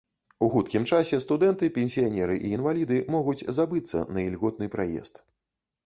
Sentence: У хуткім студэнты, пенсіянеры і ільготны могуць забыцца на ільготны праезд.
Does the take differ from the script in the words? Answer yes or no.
yes